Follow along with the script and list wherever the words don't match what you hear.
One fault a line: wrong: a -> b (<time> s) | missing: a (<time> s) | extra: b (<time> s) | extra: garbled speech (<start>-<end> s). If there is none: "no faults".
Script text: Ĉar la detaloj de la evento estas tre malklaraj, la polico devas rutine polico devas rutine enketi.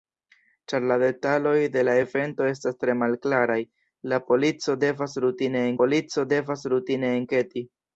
no faults